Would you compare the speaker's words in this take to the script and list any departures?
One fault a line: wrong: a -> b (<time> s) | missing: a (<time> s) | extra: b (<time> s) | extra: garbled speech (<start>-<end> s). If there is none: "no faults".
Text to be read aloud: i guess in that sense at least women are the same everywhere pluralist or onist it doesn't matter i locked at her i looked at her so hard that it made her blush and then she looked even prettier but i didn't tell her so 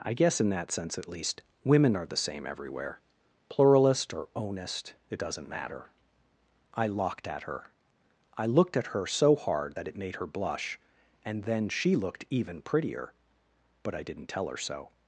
no faults